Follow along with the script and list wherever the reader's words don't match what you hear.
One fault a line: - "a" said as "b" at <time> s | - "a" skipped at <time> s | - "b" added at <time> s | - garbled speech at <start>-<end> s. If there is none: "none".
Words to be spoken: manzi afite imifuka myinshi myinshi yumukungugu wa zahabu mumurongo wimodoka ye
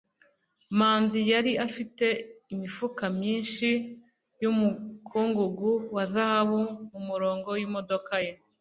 - "yari" added at 1.3 s
- "myinshi" skipped at 3.7 s